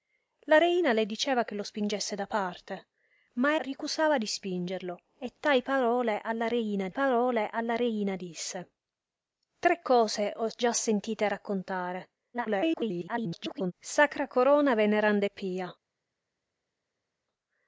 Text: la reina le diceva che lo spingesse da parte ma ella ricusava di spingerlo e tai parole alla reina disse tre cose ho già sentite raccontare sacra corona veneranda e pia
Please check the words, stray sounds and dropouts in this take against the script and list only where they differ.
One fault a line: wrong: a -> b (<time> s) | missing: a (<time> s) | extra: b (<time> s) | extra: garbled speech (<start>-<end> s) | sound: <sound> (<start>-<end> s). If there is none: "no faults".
missing: ella (3.6 s)
extra: parole alla reina (6.9 s)
extra: garbled speech (12.3-13.7 s)